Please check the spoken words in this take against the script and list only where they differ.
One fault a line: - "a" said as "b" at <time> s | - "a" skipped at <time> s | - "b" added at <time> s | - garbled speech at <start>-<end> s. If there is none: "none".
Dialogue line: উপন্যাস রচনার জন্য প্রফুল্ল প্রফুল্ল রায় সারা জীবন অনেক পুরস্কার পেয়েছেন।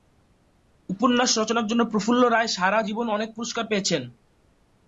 - "প্রফুল্ল" skipped at 2.2 s